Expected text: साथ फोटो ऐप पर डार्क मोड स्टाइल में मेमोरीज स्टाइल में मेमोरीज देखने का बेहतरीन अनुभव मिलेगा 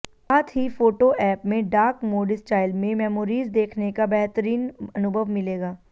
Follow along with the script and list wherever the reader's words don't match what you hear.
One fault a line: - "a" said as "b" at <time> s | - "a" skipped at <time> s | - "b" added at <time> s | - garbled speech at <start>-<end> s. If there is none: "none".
- "ही" added at 0.6 s
- "पर" said as "में" at 1.4 s
- "स्टाइल में मेमोरीज" skipped at 3.5 s